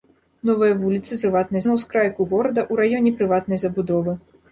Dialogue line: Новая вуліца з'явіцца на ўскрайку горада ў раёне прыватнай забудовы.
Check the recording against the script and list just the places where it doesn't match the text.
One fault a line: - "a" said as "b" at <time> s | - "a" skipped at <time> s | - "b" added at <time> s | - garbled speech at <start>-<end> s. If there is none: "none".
- "з'явіцца" said as "прыватнай" at 1.2 s